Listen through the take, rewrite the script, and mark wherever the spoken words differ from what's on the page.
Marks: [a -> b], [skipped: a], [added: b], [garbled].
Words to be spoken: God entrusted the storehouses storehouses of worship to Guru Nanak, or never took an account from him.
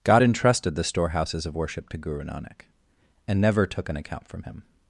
God entrusted the storehouses [skipped: storehouses] of worship to Guru Nanak, [or -> and] never took an account from him.